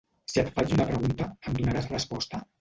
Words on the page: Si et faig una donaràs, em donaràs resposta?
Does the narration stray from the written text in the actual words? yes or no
yes